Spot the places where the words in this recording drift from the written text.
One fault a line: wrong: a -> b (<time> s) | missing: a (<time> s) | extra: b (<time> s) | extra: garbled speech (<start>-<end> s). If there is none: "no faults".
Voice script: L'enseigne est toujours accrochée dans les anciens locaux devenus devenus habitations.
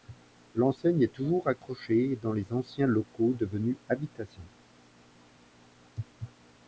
missing: devenus (3.8 s)